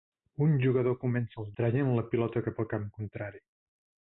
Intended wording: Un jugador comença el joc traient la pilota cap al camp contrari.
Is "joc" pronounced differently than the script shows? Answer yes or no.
yes